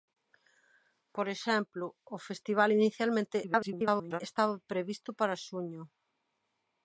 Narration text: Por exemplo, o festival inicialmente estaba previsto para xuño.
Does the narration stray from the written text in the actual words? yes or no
yes